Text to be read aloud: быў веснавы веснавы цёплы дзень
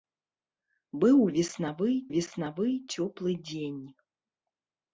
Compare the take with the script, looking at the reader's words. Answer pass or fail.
pass